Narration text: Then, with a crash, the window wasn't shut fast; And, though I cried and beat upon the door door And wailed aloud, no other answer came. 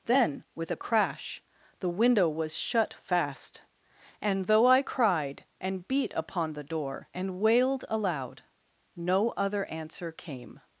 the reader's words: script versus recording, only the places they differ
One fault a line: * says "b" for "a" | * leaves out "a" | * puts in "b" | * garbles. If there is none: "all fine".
* says "was" for "wasn't"
* leaves out "door"